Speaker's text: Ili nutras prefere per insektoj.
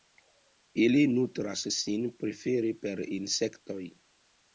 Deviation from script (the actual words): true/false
true